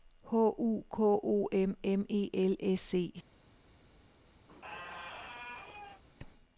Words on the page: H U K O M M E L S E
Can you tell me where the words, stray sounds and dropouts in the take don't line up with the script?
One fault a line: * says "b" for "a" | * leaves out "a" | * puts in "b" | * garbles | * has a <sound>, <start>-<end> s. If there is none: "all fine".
* has a squeak, 4.5-6.0 s